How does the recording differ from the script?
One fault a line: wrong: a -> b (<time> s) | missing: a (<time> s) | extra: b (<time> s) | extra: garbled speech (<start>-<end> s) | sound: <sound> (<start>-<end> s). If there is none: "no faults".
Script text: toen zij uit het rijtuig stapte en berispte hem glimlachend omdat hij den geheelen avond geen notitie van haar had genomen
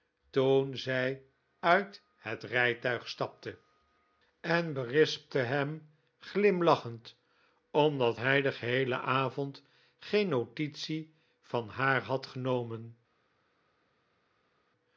no faults